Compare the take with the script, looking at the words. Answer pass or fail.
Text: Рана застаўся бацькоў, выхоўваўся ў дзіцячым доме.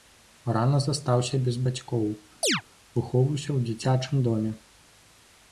fail